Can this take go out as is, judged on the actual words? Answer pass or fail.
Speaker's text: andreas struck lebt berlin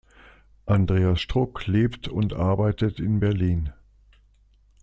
fail